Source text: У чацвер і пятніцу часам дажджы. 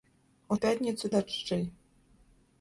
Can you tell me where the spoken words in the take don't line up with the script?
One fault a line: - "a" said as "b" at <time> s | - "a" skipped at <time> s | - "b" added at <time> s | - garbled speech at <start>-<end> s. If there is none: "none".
- "чацвер" skipped at 0.6 s
- "часам" skipped at 1.1 s